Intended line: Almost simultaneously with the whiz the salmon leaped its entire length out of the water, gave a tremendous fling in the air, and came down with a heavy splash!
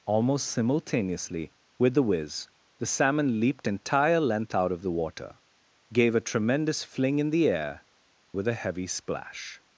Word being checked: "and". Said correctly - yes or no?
no